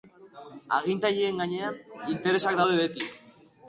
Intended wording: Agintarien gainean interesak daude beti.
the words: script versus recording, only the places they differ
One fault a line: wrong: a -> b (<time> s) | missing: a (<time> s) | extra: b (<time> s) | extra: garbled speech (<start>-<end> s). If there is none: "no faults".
no faults